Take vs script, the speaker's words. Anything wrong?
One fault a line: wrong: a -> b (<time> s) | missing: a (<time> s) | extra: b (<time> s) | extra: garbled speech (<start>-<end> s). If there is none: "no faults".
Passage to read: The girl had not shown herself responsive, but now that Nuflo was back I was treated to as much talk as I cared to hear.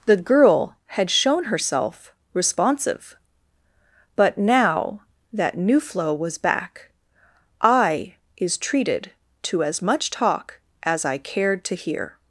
missing: not (1.1 s)
wrong: was -> is (8.4 s)